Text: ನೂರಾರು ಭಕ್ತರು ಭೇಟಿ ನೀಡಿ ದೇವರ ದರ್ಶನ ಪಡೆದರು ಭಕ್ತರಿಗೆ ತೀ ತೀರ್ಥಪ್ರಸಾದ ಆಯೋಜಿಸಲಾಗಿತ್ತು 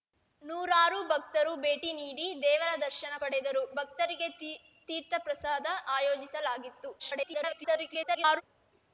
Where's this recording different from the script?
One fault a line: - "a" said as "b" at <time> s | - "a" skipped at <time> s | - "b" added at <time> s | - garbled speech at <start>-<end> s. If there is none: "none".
- garbled speech at 7.0-8.4 s